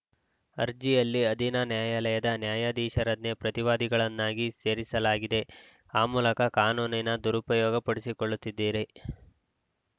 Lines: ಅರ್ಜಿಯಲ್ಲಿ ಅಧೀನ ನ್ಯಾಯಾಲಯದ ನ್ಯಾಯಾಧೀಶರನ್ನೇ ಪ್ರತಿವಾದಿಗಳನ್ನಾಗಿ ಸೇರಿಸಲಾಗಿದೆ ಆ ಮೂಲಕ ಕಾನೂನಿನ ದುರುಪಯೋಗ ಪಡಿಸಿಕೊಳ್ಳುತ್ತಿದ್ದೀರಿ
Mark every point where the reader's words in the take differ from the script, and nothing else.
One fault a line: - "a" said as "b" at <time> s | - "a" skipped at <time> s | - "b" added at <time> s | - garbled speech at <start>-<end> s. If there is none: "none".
none